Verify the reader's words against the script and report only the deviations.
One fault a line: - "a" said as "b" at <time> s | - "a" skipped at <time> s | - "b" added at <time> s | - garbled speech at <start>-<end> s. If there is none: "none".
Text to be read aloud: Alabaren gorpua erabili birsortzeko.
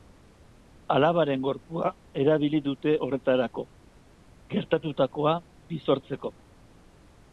- "dute horretarako gertatutakoa" added at 2.7 s